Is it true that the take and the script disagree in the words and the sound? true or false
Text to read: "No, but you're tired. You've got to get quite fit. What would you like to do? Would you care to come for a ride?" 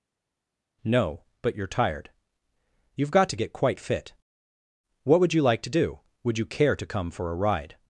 false